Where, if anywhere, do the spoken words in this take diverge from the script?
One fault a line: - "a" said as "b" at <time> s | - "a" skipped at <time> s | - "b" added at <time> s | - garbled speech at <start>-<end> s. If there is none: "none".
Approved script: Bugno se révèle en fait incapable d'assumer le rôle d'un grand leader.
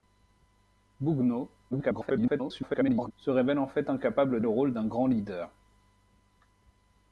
- garbled speech at 1.7-3.1 s
- "d'assumer" skipped at 4.4 s